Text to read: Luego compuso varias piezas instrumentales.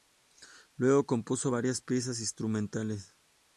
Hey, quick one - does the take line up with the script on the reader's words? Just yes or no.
yes